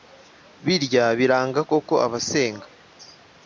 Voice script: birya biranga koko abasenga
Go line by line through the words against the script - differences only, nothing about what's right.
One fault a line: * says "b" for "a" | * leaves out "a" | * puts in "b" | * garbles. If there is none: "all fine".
all fine